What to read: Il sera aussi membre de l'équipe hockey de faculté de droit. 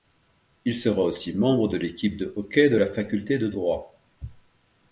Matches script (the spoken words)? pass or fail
fail